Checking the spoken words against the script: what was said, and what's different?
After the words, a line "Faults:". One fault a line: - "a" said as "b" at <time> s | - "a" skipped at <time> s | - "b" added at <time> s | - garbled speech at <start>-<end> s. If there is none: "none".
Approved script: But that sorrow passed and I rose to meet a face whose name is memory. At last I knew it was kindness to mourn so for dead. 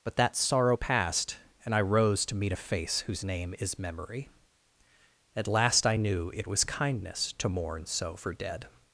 But that sorrow passed and I rose to meet a face whose name is memory. At last I knew it was kindness to mourn so for dead.
Faults:
none